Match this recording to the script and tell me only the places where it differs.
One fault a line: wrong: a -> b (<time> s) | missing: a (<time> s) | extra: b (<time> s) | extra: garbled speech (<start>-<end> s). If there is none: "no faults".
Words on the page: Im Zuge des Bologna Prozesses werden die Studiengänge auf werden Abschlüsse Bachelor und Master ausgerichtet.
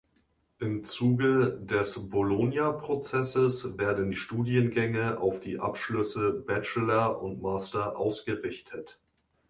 wrong: werden -> die (5.4 s)